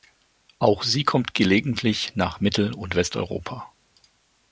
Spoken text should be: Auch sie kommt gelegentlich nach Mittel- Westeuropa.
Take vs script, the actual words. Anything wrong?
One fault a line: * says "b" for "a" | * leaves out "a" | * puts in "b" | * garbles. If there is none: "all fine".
* puts in "und"